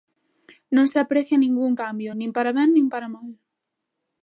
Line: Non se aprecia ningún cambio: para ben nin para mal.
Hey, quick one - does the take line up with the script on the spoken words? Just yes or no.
no